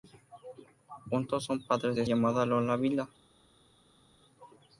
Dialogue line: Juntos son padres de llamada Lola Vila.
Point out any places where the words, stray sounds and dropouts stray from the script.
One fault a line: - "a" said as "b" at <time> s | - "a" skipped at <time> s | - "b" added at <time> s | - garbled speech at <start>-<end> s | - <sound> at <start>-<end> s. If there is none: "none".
none